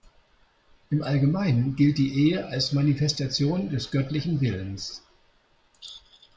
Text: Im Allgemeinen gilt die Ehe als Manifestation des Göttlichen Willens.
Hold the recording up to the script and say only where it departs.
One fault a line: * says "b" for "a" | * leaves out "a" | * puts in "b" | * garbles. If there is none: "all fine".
all fine